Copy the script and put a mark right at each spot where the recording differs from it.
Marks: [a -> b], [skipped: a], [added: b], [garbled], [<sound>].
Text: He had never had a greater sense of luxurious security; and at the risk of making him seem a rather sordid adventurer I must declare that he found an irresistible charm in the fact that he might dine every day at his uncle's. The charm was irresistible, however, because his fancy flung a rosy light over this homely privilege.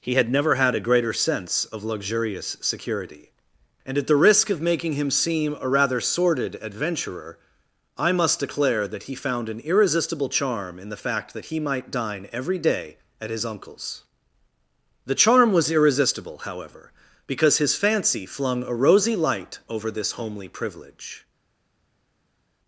He had never had a greater sense of luxurious security; and at the risk of making him seem a rather sordid adventurer I must declare that he found an irresistible charm in the fact that he might dine every day at his uncle's. The charm was irresistible, however, because his fancy flung a rosy light over this homely privilege.